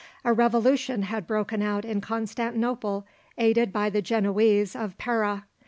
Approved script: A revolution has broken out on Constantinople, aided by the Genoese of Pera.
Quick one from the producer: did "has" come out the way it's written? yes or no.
no